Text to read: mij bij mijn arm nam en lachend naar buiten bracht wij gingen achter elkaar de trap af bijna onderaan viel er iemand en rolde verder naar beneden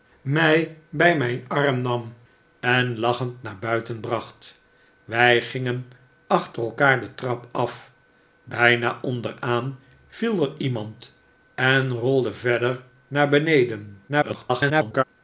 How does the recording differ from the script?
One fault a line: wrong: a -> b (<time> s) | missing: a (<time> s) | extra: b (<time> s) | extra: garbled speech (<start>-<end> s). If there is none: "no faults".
extra: garbled speech (14.1-15.0 s)